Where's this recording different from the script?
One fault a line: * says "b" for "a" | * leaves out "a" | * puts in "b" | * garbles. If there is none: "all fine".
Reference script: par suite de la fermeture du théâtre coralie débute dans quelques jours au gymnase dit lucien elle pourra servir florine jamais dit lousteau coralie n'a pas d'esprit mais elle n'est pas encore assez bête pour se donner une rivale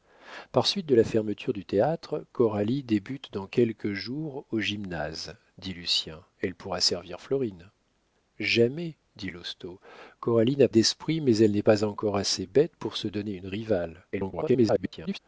* leaves out "pas"
* garbles